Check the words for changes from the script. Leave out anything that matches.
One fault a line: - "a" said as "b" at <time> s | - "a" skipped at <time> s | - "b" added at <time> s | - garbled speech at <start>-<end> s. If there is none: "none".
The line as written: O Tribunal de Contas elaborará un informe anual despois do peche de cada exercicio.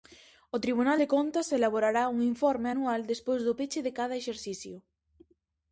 none